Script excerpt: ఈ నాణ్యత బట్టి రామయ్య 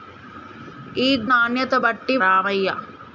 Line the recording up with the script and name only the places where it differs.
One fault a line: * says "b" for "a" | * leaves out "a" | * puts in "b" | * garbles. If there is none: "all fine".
all fine